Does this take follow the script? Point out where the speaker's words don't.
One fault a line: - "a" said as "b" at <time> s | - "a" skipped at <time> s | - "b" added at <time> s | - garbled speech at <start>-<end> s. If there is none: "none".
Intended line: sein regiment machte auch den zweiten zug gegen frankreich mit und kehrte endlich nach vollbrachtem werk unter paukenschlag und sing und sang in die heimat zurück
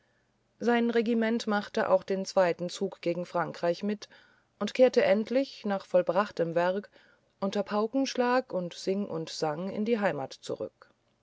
none